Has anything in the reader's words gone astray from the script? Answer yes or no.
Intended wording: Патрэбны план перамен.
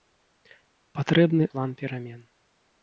no